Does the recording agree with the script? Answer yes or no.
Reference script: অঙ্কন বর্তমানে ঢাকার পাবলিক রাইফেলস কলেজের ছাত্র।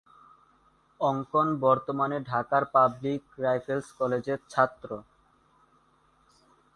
yes